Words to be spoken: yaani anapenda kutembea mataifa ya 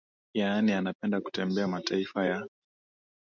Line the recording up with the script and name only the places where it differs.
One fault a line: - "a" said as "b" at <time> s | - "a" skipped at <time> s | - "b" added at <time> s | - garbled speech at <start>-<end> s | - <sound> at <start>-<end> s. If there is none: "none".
none